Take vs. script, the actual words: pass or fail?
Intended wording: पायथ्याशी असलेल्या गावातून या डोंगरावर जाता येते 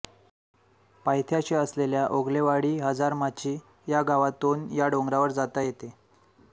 fail